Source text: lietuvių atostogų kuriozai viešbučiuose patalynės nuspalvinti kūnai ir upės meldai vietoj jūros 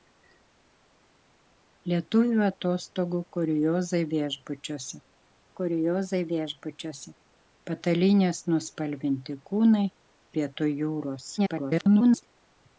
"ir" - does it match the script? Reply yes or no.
no